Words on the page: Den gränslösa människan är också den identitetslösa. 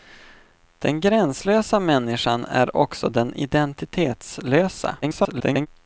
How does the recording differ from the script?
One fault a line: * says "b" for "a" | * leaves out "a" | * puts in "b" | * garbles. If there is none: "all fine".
* garbles